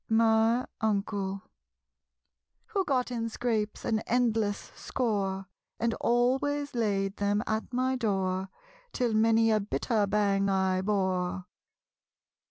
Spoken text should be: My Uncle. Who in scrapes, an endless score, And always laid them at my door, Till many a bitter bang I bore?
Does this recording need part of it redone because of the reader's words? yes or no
yes